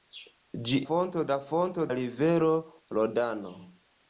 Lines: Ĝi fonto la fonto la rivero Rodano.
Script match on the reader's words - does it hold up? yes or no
yes